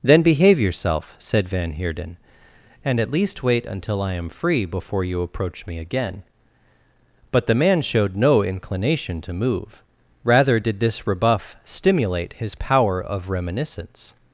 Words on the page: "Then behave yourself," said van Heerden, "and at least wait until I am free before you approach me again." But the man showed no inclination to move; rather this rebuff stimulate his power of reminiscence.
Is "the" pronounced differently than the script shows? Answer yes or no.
no